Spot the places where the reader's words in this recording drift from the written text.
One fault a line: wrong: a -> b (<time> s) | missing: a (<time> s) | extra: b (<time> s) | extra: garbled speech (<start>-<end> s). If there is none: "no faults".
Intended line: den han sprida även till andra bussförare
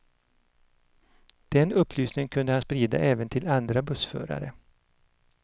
extra: upplysningen kunde (1.7 s)